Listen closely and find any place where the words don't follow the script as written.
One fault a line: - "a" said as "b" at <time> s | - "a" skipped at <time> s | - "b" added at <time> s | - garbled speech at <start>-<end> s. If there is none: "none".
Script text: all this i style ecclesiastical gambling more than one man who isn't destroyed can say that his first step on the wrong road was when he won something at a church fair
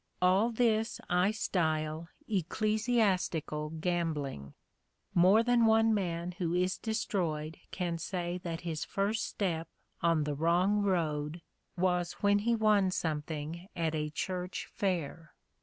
- "isn't" said as "is" at 6.5 s